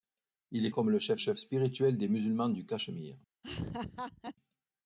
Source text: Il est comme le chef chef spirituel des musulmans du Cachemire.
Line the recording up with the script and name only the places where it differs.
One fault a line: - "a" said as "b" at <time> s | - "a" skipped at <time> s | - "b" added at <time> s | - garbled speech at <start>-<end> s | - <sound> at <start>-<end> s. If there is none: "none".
- laugh at 3.4-4.4 s